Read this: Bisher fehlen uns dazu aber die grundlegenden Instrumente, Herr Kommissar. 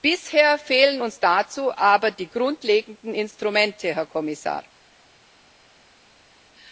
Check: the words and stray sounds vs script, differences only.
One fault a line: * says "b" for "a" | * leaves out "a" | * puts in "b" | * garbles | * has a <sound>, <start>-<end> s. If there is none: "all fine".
all fine